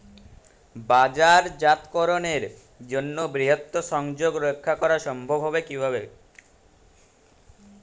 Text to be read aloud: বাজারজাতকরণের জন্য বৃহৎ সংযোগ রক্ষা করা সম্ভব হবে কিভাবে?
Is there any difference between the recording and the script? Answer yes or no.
no